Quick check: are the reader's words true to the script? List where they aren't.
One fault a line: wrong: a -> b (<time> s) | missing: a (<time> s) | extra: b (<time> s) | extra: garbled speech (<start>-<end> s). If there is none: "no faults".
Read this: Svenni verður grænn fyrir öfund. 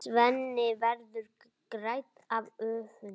wrong: fyrir -> af (2.3 s)